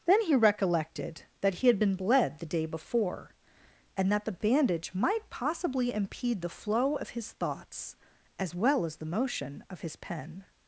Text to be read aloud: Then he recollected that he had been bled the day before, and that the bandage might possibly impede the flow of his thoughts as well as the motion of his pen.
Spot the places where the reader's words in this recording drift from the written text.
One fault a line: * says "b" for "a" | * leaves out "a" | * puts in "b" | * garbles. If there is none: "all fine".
all fine